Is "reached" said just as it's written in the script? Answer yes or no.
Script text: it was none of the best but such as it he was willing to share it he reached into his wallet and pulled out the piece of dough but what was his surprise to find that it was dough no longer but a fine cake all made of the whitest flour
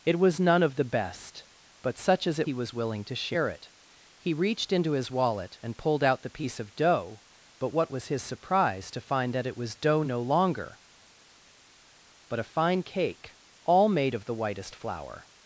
yes